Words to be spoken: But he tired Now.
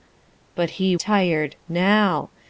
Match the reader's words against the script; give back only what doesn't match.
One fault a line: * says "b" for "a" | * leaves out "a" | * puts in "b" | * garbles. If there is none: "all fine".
all fine